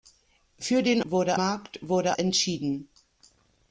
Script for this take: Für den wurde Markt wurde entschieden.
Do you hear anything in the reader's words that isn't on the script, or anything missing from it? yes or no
no